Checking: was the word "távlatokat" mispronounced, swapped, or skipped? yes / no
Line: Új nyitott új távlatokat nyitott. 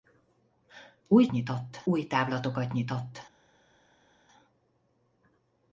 no